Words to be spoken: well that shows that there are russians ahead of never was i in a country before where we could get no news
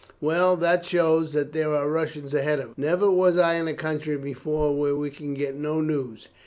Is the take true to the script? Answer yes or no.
yes